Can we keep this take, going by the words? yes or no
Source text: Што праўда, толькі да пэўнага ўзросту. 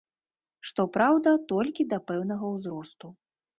yes